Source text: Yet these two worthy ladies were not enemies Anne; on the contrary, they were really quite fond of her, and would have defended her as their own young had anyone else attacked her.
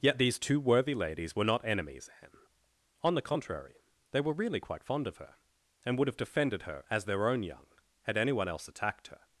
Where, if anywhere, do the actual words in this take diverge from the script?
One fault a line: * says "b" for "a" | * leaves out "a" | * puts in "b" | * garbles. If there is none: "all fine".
all fine